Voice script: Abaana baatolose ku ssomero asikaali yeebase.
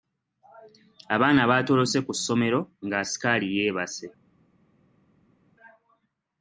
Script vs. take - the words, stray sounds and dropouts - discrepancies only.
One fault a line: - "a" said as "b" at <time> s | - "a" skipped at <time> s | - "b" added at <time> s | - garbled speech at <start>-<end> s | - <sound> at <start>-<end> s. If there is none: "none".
- "nga" added at 2.8 s